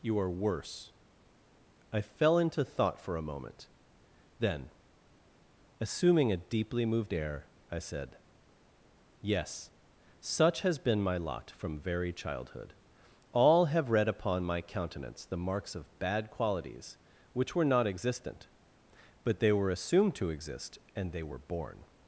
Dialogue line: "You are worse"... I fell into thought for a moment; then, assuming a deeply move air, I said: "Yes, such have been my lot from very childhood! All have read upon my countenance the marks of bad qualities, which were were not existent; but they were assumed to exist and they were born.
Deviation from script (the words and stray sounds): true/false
true